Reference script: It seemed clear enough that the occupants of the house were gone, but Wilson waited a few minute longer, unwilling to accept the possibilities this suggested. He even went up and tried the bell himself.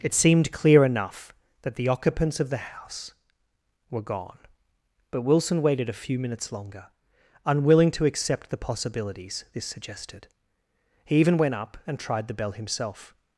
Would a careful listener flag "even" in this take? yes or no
no